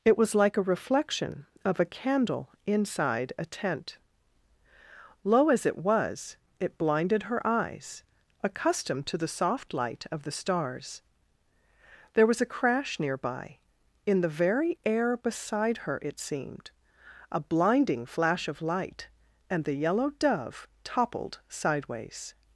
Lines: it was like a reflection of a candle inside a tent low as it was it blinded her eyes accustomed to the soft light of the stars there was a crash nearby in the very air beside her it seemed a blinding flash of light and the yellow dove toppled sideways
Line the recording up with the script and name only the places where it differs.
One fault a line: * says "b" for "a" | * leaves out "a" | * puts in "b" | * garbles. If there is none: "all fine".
all fine